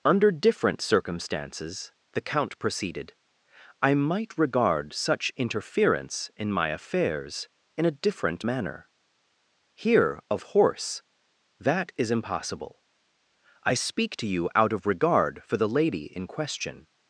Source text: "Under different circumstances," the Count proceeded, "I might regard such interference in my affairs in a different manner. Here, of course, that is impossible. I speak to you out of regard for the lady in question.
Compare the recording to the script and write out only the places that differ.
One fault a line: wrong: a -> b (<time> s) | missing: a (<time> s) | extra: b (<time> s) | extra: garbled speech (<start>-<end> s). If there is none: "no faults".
wrong: course -> horse (10.4 s)